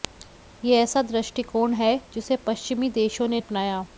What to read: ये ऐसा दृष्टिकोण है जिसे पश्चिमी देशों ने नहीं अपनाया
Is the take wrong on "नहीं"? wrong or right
wrong